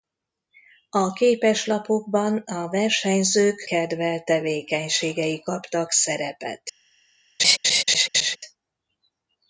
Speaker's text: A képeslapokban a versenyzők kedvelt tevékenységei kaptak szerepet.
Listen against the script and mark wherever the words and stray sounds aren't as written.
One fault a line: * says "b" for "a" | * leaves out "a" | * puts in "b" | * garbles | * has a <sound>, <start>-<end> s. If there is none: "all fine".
* has a laugh, 7.4-8.4 s